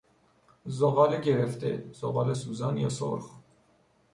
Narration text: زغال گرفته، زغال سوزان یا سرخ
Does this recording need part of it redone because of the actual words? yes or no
no